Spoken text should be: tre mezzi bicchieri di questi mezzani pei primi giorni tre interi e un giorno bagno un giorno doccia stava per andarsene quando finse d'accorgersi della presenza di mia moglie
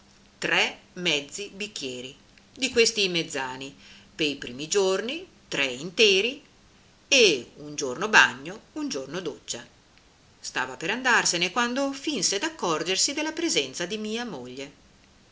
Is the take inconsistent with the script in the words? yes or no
no